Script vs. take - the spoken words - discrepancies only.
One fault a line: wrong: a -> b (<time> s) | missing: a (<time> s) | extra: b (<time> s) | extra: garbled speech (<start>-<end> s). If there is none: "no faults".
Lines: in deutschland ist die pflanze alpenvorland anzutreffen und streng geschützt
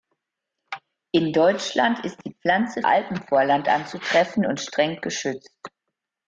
no faults